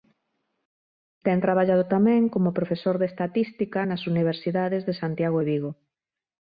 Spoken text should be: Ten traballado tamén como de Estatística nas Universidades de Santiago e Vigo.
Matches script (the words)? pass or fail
fail